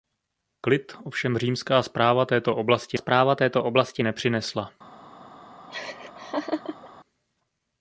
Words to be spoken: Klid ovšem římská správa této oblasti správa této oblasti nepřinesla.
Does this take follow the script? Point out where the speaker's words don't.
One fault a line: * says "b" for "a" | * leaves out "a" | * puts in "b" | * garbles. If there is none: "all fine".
all fine